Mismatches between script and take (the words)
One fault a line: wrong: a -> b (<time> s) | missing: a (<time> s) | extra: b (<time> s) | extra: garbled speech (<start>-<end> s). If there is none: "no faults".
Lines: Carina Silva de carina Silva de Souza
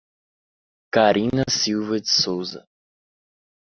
missing: carina Silva de (2.1 s)